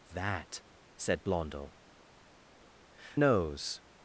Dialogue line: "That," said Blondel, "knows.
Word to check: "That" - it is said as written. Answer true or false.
true